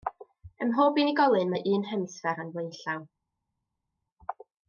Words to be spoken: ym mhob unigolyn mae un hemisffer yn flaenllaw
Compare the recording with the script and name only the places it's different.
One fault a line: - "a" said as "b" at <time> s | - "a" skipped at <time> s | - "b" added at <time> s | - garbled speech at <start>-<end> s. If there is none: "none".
none